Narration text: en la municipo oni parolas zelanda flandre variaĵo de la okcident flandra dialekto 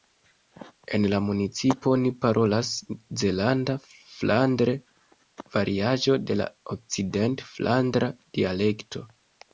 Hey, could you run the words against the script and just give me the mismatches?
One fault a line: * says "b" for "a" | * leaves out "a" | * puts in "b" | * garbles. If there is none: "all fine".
all fine